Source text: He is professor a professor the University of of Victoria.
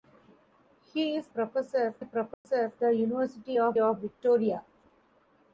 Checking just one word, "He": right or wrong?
right